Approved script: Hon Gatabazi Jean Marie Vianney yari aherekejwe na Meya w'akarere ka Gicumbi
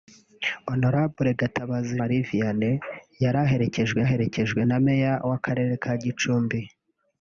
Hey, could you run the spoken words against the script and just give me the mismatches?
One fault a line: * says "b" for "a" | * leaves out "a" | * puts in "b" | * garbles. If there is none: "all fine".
* leaves out "Jean"
* puts in "aherekejwe"